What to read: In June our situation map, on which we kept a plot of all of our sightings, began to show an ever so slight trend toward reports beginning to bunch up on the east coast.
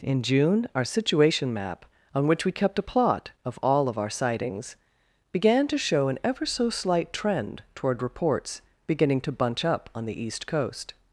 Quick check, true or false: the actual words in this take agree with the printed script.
true